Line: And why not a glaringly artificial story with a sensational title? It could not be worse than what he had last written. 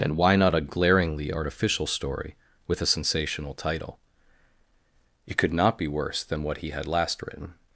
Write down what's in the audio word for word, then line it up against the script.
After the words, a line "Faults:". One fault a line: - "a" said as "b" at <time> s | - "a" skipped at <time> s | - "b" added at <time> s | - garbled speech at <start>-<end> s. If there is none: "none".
And why not a glaringly artificial story with a sensational title? It could not be worse than what he had last written.
Faults:
none